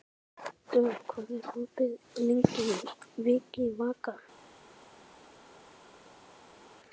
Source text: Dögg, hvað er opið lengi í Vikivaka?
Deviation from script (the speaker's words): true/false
false